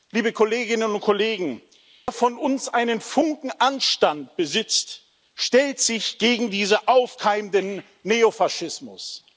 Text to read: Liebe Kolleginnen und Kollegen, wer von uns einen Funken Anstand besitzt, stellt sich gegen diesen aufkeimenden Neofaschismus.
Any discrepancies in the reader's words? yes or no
no